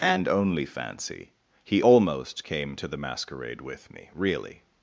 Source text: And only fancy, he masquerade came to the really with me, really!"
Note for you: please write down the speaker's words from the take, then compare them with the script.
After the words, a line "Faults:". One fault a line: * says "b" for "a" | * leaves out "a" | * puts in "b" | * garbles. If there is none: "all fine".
And only fancy, he almost came to the masquerade with me, really!"
Faults:
* says "almost" for "masquerade"
* says "masquerade" for "really"